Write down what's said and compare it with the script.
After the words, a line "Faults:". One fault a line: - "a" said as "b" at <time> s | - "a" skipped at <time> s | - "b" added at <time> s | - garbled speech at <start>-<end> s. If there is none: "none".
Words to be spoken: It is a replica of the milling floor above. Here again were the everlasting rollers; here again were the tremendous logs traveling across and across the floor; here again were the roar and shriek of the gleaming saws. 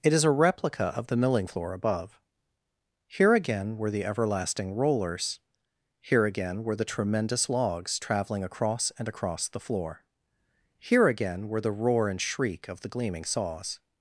It is a replica of the milling floor above. Here again were the everlasting rollers; here again were the tremendous logs traveling across and across the floor; here again were the roar and shriek of the gleaming saws.
Faults:
none